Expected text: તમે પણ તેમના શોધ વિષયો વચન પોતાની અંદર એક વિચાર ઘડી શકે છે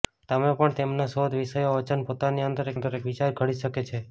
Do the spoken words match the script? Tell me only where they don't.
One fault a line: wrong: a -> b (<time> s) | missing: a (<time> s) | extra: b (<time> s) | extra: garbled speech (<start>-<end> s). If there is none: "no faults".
extra: અંદર (2.7 s)